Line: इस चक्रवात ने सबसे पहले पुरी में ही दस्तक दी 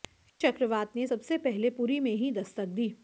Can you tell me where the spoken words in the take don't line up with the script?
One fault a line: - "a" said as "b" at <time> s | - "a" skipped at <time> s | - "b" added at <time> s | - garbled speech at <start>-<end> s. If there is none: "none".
none